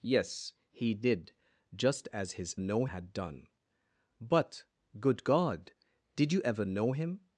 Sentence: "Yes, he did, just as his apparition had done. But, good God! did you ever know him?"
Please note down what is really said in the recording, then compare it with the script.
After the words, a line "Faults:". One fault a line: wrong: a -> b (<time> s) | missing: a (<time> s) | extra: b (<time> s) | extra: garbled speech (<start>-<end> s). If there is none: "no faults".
"Yes, he did, just as his know had done. But, good God! did you ever know him?"
Faults:
wrong: apparition -> know (2.6 s)